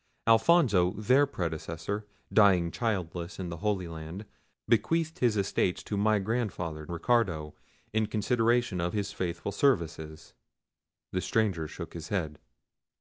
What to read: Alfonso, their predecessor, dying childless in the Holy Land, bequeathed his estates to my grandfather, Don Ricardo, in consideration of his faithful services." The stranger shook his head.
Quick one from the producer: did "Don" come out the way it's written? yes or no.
no